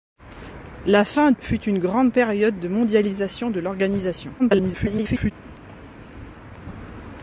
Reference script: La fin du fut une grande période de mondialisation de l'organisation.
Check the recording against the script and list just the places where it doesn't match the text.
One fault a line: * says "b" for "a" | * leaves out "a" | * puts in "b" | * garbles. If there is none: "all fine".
* leaves out "du"
* garbles